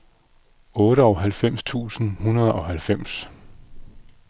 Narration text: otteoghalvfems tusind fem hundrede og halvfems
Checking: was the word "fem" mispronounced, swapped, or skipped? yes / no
yes